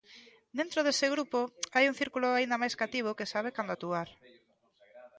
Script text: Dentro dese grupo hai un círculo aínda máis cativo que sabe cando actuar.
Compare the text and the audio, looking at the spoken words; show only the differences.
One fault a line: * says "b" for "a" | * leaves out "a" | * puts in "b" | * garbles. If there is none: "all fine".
all fine